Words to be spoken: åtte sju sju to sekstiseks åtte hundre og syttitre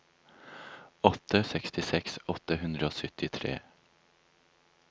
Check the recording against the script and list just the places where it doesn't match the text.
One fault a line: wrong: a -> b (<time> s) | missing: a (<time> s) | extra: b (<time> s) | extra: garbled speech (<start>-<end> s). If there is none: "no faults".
missing: sju sju to (1.4 s)